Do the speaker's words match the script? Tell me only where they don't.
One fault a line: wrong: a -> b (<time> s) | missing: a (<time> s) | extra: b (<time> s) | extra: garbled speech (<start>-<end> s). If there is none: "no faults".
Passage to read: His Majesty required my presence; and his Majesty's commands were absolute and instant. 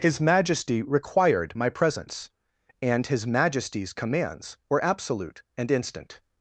no faults